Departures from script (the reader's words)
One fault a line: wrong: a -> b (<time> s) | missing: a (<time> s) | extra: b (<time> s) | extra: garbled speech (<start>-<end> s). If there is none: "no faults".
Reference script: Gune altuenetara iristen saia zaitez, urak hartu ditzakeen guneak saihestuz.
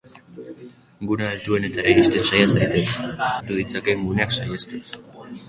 missing: urak (2.9 s)